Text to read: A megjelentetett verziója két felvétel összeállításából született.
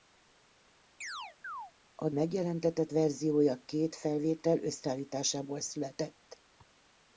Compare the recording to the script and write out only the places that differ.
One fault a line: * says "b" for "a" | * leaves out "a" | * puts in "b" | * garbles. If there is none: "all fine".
all fine